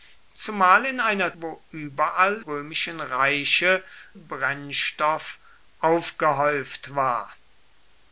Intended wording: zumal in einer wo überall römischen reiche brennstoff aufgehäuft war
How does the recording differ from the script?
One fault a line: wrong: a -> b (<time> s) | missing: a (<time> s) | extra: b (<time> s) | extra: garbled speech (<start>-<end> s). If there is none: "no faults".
no faults